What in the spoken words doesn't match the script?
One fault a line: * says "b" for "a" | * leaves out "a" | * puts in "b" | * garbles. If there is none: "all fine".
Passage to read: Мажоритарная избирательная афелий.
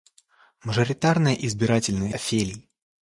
all fine